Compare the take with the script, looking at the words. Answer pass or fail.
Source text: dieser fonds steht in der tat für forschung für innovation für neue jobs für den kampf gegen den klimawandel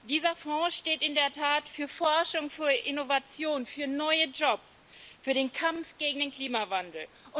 pass